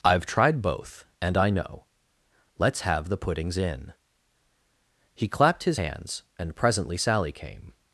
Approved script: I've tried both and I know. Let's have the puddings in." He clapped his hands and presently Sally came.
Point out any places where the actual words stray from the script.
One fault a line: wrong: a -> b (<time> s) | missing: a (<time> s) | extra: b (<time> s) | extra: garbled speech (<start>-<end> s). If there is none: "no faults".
no faults